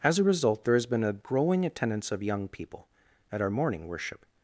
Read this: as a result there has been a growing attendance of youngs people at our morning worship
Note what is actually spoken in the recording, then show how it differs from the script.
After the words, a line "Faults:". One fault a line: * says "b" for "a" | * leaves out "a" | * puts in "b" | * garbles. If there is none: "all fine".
as a result there has been a growing attendance of young people at our morning worship
Faults:
* says "young" for "youngs"